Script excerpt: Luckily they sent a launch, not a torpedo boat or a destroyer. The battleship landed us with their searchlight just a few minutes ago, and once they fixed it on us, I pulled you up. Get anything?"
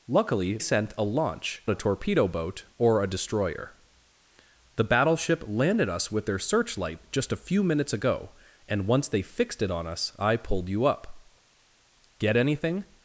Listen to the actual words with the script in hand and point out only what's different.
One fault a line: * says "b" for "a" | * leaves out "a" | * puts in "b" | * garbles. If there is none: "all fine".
* leaves out "they"
* leaves out "not"